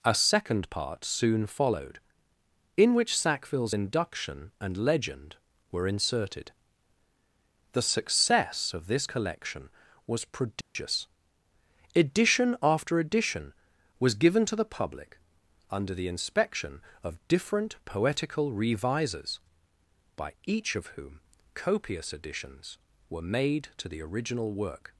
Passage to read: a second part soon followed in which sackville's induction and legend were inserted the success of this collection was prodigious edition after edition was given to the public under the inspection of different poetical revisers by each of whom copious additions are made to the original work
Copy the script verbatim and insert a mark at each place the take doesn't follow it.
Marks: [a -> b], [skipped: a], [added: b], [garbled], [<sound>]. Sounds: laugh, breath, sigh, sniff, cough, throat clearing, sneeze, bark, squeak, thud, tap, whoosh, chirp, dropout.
a second part soon followed in which sackville's induction and legend were inserted the success of this collection was prodigious [dropout] edition after edition was given to the public under the inspection of different poetical revisers by each of whom copious additions [are -> were] made to the original work